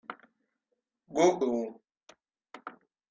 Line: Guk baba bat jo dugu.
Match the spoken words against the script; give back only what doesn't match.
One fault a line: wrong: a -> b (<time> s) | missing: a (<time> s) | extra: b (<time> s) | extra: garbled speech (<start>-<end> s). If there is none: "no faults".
missing: baba bat jo (1.4 s)